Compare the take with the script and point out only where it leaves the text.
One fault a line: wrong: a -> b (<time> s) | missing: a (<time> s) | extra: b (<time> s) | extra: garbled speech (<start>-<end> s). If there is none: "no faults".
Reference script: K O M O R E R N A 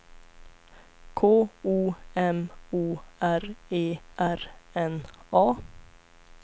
no faults